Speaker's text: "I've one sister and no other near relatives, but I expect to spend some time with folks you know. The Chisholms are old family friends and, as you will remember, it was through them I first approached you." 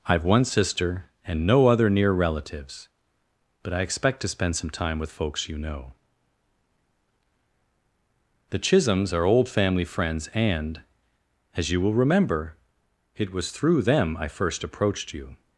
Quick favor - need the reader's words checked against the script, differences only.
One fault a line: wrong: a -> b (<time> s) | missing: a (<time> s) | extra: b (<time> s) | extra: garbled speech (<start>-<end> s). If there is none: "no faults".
no faults